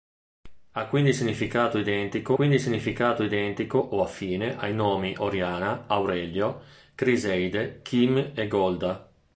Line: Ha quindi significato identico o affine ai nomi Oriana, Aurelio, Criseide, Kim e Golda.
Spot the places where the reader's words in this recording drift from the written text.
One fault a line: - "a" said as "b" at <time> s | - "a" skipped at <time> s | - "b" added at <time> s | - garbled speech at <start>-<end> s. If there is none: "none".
- "quindi significato identico" added at 2.3 s